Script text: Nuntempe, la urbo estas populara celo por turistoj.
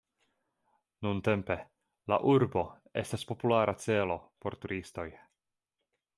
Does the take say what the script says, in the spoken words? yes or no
yes